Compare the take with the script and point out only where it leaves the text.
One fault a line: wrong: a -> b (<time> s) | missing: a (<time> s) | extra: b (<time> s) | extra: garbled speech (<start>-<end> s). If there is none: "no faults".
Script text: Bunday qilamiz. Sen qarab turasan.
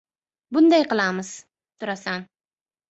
missing: Sen qarab (1.3 s)